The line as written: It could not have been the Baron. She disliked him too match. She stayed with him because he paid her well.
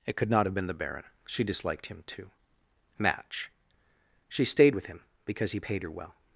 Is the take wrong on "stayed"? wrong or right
right